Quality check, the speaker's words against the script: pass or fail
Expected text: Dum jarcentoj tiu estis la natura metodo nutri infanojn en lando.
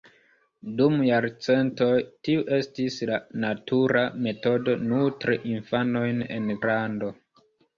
pass